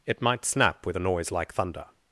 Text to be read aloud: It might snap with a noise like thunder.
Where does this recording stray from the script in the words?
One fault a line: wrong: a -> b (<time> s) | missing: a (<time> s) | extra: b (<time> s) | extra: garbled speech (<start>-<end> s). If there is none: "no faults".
no faults